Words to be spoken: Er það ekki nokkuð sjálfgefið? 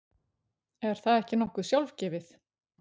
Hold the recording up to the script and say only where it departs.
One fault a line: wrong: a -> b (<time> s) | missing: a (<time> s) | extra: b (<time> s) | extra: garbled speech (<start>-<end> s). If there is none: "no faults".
no faults